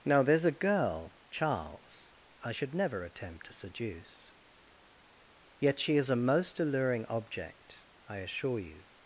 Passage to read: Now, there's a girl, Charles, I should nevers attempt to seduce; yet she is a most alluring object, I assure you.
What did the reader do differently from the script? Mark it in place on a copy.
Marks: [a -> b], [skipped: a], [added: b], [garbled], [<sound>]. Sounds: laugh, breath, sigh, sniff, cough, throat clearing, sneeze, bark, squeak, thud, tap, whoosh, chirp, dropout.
Now, there's a girl, Charles, I should [nevers -> never] attempt to seduce; yet she is a most alluring object, I assure you.